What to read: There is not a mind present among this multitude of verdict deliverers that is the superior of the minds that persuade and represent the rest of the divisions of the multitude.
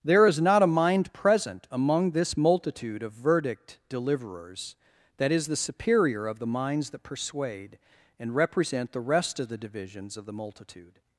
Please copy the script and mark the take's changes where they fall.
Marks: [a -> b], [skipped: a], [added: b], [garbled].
There is not a mind present among this multitude of verdict deliverers that is the superior of the minds that persuade and represent the rest of the divisions of the multitude.